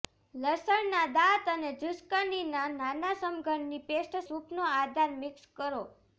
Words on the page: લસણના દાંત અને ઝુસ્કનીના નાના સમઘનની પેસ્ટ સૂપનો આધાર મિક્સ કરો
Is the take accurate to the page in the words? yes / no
yes